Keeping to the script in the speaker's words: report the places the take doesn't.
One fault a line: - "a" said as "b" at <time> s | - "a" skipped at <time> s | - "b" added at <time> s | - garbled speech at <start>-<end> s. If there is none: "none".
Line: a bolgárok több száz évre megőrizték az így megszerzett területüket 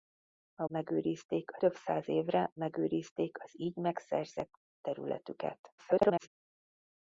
- "bolgárok" said as "megőrizték" at 0.7 s
- garbled speech at 5.8-6.3 s